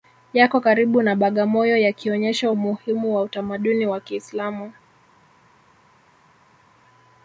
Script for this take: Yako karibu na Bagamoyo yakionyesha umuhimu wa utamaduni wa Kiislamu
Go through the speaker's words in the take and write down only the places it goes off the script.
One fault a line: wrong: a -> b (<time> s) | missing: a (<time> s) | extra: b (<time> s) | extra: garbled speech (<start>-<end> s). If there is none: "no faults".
no faults